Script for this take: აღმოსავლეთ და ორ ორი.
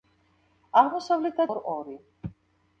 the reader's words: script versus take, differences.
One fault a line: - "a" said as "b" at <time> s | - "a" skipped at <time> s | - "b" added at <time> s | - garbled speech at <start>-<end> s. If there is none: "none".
none